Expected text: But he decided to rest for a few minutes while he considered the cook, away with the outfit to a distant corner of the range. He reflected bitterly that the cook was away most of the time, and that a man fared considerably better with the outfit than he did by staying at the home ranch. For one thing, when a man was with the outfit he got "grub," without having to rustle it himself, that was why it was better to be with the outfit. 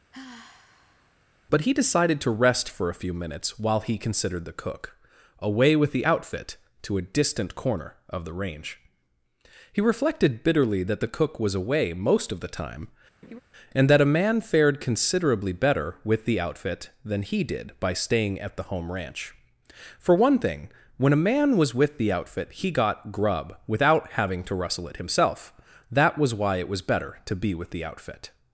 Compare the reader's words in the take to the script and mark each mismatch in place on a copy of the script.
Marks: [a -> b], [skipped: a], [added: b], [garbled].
But he decided to rest for a few minutes while he considered the cook, away with the outfit to a distant corner of the range. He reflected bitterly that the cook was away most of the time, and that a man fared considerably better with the outfit than he did by staying at the home ranch. For one thing, when a man was with the outfit he got "grub," without having to rustle it himself, that was why it was better to be with the outfit.